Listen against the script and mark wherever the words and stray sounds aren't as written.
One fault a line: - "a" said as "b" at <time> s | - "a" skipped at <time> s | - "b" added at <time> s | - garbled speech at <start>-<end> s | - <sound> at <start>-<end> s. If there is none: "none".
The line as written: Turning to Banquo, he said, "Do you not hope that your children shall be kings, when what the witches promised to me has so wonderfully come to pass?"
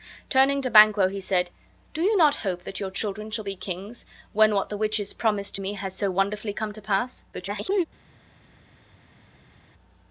- garbled speech at 7.3-7.9 s